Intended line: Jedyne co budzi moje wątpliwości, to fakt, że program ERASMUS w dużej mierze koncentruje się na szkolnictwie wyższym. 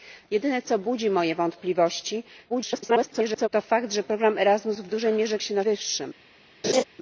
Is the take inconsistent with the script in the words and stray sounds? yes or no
yes